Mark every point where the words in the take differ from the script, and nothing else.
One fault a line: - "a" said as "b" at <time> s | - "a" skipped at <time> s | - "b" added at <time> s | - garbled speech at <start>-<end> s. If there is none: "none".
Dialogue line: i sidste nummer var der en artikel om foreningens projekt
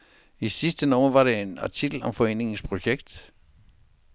none